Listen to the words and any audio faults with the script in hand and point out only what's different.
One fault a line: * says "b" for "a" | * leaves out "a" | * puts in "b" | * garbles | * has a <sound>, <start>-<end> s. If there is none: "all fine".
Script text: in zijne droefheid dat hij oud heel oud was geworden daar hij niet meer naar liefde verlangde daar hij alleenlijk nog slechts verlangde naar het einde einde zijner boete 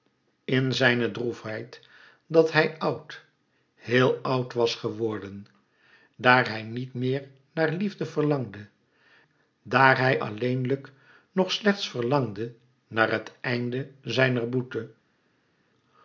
* leaves out "einde"